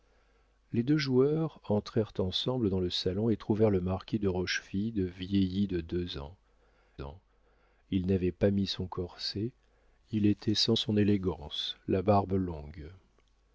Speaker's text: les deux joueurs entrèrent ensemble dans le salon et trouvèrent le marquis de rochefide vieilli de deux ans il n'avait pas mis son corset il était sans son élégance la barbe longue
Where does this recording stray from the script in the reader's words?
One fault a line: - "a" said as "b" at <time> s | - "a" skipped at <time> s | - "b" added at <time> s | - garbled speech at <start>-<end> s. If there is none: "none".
- "ans" added at 7.0 s